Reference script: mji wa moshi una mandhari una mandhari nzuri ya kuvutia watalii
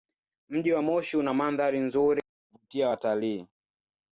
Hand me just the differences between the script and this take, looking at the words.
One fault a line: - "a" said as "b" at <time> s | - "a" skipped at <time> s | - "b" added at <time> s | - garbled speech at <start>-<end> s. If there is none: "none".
- "una mandhari" skipped at 1.8 s